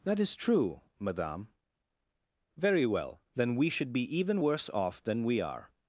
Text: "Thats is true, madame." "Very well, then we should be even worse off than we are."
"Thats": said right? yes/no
no